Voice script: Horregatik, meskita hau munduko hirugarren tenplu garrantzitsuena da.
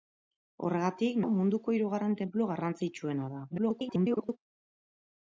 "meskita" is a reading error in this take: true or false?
true